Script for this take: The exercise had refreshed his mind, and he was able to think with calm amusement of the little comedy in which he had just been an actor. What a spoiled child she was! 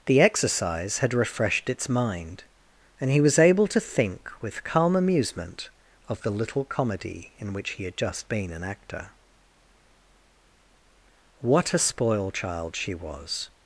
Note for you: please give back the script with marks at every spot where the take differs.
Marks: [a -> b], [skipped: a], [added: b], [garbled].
The exercise had refreshed [his -> its] mind, and he was able to think with calm amusement of the little comedy in which he had just been an actor. What a [spoiled -> spoil] child she was!